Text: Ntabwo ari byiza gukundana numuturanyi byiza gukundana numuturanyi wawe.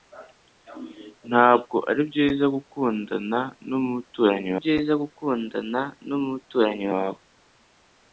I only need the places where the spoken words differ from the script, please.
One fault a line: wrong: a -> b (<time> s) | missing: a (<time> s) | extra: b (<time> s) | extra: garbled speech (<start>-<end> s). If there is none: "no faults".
no faults